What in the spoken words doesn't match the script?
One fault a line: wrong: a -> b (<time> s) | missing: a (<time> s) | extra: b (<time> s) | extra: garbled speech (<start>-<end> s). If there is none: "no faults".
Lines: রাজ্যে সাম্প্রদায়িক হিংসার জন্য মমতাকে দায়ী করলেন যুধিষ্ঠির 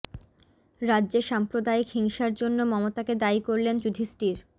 no faults